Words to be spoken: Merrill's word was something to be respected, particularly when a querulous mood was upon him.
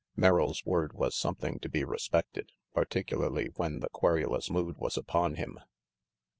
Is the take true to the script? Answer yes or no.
no